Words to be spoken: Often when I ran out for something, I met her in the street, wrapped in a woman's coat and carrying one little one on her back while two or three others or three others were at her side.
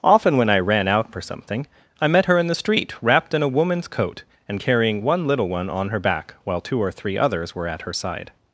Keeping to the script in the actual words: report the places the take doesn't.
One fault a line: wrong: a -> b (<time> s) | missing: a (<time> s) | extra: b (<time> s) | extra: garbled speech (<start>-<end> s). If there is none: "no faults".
missing: or three others (7.5 s)